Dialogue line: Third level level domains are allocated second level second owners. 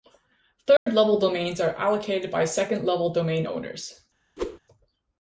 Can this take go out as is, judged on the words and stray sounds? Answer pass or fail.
fail